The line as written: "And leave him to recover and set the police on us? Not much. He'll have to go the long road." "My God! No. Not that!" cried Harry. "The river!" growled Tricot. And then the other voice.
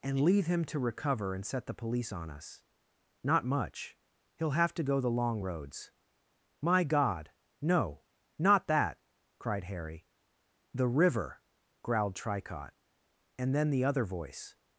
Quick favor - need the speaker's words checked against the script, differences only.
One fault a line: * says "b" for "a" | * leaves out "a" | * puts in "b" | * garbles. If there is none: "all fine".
* says "roads" for "road"